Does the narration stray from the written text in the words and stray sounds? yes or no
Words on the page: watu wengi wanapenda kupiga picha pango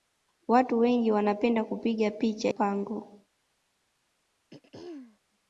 yes